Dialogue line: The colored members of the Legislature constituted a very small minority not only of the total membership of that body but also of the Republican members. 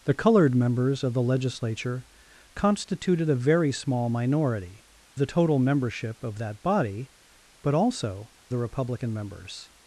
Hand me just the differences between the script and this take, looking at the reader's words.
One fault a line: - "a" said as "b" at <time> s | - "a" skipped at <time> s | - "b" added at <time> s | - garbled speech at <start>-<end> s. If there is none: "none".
- "not only of" skipped at 4.8 s
- "of" skipped at 8.3 s